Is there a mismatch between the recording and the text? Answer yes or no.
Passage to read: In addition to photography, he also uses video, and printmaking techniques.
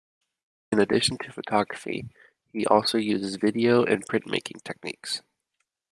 no